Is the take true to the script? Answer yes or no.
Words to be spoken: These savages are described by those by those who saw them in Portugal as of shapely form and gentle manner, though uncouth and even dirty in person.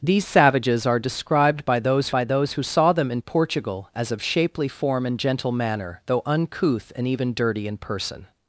yes